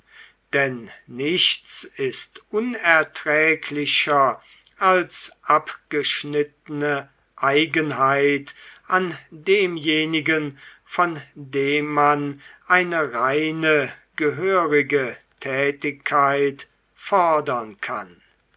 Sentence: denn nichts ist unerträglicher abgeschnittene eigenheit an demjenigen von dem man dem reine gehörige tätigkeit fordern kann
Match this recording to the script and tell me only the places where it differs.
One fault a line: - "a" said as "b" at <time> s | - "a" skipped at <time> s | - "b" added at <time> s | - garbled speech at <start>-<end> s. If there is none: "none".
- "als" added at 4.8 s
- "dem" said as "eine" at 12.7 s